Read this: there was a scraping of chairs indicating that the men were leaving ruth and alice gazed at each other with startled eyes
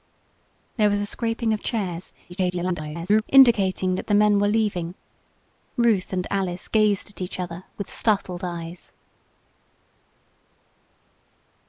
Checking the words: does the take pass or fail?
fail